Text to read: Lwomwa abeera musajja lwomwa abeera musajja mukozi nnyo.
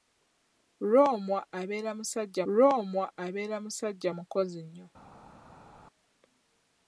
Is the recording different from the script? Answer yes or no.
no